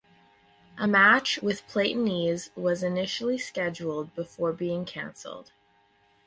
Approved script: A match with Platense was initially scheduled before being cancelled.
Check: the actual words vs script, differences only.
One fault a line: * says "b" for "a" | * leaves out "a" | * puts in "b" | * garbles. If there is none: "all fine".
all fine